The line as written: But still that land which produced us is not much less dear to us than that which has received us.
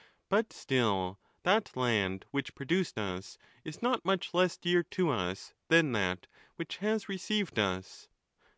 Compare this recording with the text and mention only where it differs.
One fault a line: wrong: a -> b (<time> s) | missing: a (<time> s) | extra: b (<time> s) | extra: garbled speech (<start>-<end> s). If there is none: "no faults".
no faults